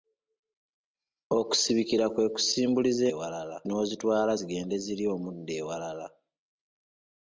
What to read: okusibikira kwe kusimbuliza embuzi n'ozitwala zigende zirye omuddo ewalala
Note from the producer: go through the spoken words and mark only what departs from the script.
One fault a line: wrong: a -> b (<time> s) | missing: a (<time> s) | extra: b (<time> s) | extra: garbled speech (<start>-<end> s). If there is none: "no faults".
wrong: embuzi -> ewalala (3.1 s)